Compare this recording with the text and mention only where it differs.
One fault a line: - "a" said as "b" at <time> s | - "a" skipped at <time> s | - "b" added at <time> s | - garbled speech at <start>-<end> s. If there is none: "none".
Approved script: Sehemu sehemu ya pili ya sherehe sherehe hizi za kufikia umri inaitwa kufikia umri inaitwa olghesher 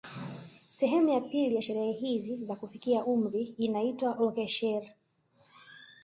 - "sehemu" skipped at 1.1 s
- "sherehe" skipped at 1.9 s
- "kufikia umri inaitwa" skipped at 4.1 s